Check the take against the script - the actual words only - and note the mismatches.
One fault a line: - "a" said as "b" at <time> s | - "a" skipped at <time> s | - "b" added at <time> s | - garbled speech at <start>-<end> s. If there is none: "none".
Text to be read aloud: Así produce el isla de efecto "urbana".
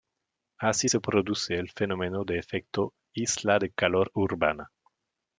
- "se" added at 0.9 s
- "fenómeno de efecto" added at 1.7 s
- "efecto" said as "calor" at 3.7 s